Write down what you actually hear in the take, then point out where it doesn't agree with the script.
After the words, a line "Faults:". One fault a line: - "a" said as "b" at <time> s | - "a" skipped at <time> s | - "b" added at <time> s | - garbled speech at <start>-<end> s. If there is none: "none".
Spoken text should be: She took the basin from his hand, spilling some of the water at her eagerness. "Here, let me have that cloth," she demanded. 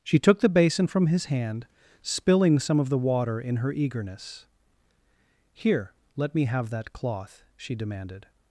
She took the basin from his hand, spilling some of the water in her eagerness. "Here, let me have that cloth," she demanded.
Faults:
- "at" said as "in" at 3.4 s